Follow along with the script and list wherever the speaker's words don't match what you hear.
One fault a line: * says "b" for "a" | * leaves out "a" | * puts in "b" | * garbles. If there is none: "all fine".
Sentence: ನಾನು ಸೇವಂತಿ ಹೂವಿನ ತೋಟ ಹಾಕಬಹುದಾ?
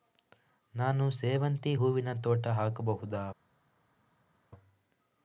all fine